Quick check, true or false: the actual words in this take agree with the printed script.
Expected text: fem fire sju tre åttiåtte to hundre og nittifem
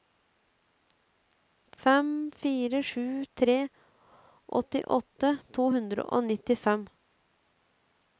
true